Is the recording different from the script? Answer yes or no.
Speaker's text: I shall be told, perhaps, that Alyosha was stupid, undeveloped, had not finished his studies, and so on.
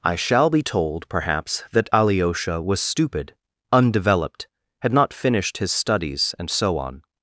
no